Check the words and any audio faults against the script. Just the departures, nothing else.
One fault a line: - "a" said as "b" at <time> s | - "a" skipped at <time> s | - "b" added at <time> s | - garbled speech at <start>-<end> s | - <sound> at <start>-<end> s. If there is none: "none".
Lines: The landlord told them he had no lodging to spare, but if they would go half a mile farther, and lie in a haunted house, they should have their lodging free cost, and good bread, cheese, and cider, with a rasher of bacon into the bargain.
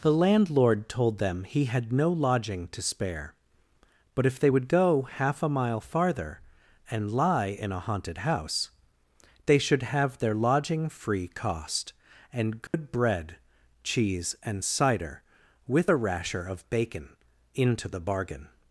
- dropout at 12.7-12.7 s